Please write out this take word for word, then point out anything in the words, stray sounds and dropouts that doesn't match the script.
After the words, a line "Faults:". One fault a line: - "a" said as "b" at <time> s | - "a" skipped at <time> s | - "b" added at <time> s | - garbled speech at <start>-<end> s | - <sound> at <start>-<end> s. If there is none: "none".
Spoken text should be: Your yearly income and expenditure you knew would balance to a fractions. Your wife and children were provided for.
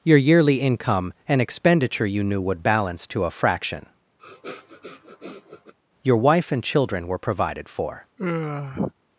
Your yearly income and expenditure you knew would balance to a fraction. Your wife and children were provided for.
Faults:
- "fractions" said as "fraction" at 3.3 s
- sniff at 4.2-5.7 s
- sigh at 8.2-8.9 s